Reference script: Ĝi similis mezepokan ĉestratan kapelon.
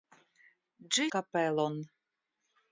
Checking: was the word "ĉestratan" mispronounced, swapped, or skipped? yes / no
yes